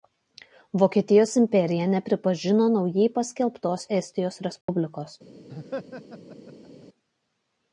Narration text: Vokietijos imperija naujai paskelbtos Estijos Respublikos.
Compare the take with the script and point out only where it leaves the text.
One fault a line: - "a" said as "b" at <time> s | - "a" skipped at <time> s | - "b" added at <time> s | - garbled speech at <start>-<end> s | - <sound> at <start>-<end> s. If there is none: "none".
- "nepripažino" added at 1.9 s
- dropout at 4.6-4.7 s
- laugh at 5.5-6.9 s